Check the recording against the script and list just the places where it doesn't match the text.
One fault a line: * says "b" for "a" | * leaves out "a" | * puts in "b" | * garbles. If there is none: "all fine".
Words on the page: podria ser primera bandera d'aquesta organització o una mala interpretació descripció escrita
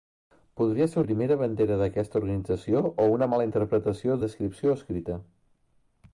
all fine